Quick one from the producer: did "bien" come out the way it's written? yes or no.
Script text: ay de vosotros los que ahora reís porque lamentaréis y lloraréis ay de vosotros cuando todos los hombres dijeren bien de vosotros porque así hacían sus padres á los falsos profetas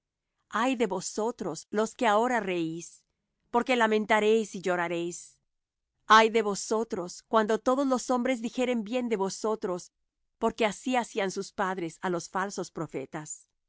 yes